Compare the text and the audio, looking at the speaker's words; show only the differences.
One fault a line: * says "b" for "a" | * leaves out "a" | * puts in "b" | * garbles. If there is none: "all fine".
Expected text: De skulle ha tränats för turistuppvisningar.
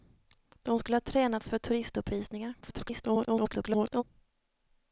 * garbles